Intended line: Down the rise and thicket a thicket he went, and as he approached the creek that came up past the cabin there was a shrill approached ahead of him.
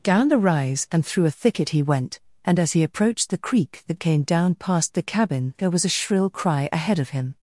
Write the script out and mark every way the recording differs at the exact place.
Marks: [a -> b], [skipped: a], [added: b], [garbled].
Down the rise and [thicket -> through] a thicket he went, and as he approached the creek that came [up -> down] past the cabin there was a shrill [approached -> cry] ahead of him.